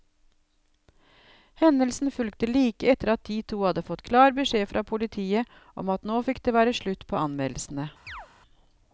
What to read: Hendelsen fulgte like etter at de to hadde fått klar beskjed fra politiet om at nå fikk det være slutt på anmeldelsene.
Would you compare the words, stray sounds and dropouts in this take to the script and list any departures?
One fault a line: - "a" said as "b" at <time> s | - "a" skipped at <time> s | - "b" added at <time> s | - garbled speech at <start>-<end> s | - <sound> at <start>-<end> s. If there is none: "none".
- chirp at 8.1-8.3 s